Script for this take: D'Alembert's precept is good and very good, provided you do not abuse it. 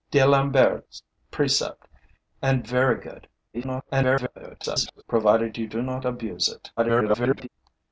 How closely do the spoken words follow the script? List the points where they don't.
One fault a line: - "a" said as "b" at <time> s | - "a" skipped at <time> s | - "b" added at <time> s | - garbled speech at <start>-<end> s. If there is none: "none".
- "is good" skipped at 1.9 s
- garbled speech at 3.5-5.0 s
- garbled speech at 6.8-7.5 s